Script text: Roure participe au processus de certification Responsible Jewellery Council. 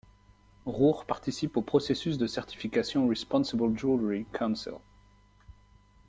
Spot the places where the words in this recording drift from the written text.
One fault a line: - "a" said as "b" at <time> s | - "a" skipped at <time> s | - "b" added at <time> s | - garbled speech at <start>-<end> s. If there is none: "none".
none